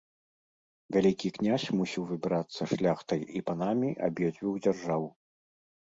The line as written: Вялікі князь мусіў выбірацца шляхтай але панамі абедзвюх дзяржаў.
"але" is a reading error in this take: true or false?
true